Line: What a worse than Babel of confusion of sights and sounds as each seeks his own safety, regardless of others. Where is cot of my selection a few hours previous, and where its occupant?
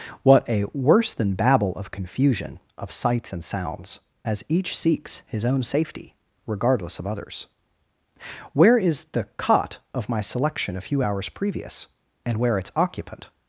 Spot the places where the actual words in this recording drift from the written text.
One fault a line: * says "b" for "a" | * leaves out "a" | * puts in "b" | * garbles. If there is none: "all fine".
* puts in "the"